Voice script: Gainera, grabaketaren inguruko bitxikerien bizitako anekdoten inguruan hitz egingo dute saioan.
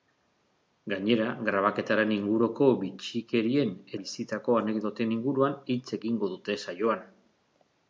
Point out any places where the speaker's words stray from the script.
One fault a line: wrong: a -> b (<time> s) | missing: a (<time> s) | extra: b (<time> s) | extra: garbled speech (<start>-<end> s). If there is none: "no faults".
no faults